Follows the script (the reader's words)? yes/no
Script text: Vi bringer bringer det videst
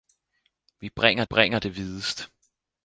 yes